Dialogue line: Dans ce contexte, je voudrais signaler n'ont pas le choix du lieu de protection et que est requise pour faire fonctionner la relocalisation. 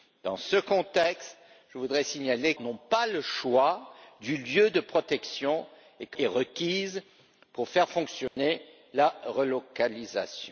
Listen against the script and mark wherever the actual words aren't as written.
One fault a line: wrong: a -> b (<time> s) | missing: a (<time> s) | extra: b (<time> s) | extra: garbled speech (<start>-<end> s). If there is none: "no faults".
no faults